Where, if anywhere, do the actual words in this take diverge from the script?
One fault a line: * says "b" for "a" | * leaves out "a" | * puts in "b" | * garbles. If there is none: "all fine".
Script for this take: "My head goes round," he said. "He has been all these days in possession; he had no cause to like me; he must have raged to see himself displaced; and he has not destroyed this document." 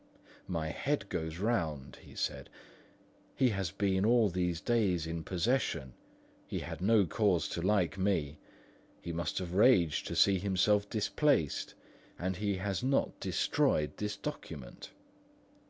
all fine